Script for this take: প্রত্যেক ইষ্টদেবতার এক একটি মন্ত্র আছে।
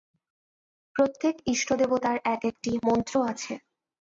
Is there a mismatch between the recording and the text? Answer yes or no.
no